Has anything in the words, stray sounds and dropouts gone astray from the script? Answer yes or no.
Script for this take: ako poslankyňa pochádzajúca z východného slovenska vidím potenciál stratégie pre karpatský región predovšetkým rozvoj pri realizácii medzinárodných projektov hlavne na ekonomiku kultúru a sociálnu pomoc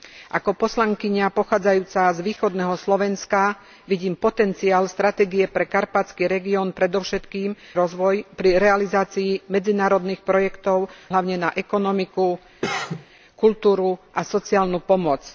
yes